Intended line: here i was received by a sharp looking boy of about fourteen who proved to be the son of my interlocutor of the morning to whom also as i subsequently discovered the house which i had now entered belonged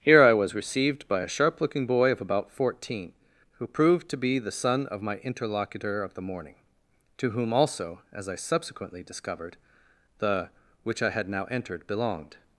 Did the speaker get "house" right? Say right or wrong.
wrong